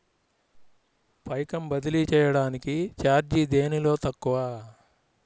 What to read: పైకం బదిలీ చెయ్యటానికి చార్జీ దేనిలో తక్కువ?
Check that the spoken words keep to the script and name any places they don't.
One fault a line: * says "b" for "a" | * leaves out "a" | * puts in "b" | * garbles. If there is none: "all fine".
all fine